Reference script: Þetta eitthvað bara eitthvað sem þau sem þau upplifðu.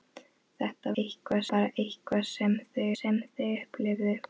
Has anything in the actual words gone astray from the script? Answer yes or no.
no